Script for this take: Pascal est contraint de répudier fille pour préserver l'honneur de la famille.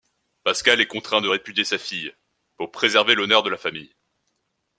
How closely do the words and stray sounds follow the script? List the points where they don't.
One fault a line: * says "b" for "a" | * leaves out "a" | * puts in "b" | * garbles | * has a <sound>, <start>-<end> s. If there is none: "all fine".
* puts in "sa"